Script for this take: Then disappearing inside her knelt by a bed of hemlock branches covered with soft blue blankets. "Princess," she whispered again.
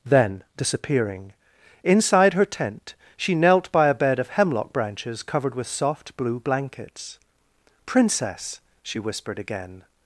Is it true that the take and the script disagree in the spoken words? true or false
true